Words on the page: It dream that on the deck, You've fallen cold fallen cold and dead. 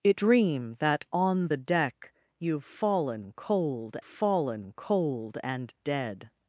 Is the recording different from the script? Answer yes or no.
no